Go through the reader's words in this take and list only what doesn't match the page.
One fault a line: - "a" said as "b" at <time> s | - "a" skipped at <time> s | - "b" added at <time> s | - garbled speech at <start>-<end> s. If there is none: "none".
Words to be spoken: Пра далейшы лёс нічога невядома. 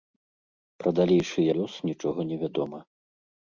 none